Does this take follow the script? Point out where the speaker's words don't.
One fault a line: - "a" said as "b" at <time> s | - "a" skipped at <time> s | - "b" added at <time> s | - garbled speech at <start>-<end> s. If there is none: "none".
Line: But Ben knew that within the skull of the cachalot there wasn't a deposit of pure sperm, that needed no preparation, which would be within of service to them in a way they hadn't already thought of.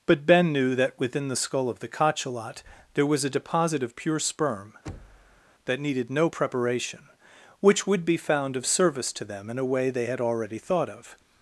- "wasn't" said as "was" at 3.0 s
- "within" said as "found" at 8.2 s
- "hadn't" said as "had" at 10.1 s